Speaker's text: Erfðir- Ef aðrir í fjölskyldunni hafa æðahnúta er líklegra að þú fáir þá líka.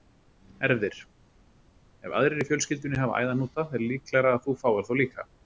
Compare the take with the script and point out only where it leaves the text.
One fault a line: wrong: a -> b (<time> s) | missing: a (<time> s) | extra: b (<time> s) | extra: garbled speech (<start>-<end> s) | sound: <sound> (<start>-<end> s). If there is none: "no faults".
no faults